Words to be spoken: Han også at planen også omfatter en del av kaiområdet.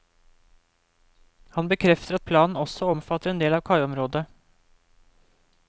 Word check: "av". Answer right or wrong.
right